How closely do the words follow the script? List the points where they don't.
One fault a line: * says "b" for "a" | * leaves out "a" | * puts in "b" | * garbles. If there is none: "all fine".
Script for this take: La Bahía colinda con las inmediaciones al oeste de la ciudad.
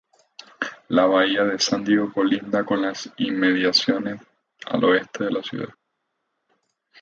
* puts in "de San Diego"